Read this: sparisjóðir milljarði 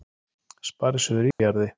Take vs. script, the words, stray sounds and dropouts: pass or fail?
fail